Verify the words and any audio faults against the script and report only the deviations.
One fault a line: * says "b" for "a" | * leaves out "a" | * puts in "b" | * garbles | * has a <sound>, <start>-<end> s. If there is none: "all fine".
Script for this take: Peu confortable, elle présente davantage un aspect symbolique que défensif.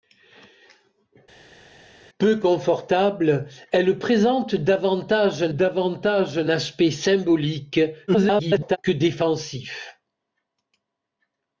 * puts in "davantage un"
* garbles